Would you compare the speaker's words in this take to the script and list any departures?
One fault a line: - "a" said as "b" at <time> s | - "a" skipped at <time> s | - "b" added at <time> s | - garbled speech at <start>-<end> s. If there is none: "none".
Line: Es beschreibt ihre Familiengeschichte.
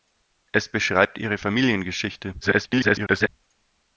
- garbled speech at 2.4-3.3 s